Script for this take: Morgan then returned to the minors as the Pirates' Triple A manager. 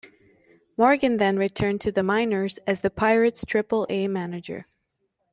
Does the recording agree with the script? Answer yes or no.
yes